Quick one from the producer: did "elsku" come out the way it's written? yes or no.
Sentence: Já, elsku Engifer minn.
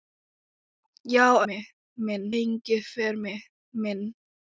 no